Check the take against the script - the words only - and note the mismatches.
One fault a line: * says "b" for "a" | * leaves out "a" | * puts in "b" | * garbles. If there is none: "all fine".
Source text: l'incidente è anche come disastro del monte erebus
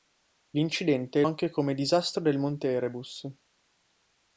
all fine